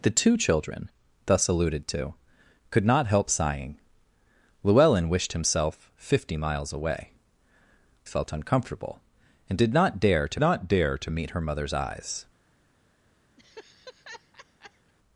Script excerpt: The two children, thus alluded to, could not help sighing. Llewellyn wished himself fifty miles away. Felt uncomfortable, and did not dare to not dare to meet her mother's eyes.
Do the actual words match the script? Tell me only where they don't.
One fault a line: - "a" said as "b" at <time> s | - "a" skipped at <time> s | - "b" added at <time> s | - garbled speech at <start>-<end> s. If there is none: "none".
none